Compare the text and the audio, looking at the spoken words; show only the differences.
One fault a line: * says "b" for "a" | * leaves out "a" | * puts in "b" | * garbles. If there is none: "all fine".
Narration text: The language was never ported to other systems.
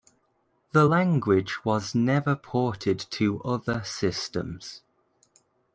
all fine